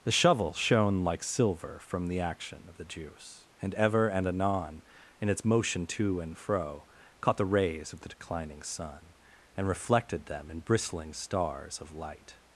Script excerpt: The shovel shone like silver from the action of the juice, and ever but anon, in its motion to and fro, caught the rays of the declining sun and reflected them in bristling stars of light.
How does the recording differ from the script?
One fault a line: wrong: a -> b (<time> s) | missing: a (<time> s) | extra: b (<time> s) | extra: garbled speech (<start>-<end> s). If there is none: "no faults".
wrong: but -> and (4.1 s)